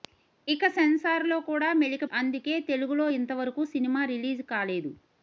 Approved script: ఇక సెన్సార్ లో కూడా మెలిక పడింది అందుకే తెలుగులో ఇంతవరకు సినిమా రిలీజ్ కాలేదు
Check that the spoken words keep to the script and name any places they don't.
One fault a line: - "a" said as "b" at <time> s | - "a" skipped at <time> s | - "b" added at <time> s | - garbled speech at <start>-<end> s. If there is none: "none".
- "పడింది" skipped at 2.0 s